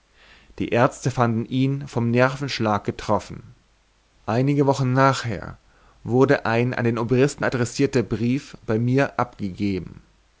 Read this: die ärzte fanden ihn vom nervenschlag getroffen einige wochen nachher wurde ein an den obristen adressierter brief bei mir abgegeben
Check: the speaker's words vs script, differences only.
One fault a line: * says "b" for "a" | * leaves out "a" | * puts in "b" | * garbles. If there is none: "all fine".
all fine